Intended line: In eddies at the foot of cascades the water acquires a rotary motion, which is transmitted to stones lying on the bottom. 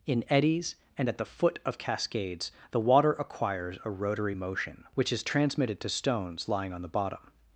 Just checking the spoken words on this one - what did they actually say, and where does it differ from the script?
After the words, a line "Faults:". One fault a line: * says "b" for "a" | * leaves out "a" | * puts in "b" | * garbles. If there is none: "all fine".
In eddies and at the foot of cascades the water acquires a rotary motion, which is transmitted to stones lying on the bottom.
Faults:
* puts in "and"